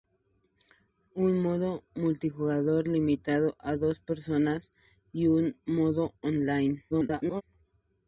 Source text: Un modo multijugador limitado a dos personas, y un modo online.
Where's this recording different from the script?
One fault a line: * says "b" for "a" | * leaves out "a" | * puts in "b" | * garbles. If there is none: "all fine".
* garbles